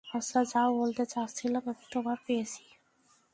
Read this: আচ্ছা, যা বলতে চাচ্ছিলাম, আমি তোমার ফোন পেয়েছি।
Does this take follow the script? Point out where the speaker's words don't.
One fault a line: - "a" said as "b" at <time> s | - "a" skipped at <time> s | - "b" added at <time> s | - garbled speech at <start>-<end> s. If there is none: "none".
- "ফোন" skipped at 2.2 s